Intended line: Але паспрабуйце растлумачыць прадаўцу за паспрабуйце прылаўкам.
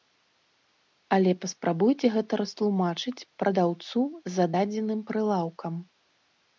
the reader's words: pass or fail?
fail